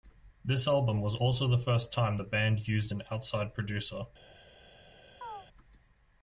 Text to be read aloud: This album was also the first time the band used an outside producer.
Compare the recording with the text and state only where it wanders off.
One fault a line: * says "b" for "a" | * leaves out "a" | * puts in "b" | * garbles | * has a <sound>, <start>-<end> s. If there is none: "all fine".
* has a chirp, 5.2-5.5 s